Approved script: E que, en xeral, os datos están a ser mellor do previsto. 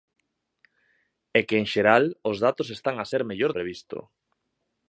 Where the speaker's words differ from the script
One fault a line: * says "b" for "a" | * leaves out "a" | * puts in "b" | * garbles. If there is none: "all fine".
* leaves out "do"